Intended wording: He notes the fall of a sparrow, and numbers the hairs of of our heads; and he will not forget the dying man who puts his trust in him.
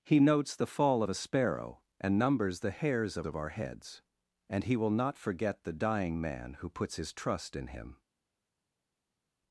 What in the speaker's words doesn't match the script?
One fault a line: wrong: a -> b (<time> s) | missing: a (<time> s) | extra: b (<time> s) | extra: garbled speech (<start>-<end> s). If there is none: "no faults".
no faults